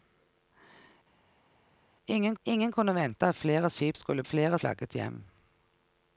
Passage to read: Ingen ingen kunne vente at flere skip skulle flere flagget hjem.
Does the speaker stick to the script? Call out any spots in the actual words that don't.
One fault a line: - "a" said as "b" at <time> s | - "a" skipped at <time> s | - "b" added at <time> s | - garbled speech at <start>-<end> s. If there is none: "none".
none